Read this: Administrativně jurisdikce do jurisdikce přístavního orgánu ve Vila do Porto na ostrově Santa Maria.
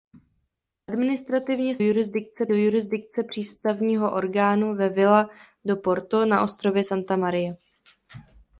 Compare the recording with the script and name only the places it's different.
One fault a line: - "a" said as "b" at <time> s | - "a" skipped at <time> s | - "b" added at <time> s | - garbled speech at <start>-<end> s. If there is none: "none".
none